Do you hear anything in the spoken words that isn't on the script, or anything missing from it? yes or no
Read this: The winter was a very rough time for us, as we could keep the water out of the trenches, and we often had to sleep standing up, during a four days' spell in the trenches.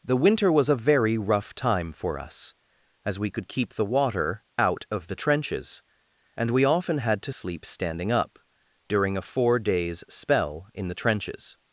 no